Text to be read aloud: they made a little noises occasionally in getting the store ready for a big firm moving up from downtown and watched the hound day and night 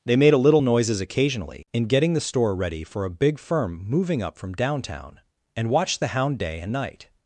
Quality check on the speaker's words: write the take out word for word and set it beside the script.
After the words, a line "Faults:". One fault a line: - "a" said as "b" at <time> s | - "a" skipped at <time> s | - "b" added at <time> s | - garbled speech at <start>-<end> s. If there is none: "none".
they made a little noises occasionally in getting the store ready for a big firm moving up from downtown and watched the hound day and night
Faults:
none